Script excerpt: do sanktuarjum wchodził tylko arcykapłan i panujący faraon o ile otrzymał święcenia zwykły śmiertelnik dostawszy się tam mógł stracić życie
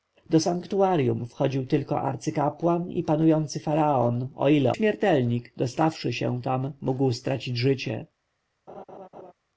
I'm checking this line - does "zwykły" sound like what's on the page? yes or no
no